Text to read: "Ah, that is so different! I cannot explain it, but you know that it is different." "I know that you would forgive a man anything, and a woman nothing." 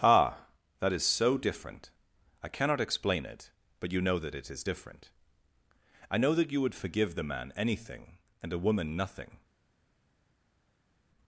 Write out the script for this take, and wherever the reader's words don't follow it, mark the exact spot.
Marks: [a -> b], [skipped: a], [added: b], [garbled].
"Ah, that is so different! I cannot explain it, but you know that it is different." "I know that you would forgive [a -> the] man anything, and a woman nothing."